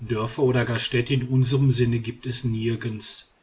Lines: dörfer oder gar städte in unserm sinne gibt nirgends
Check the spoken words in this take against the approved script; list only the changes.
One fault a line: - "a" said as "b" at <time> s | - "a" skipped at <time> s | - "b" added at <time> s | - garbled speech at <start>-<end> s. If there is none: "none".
- "es" added at 2.3 s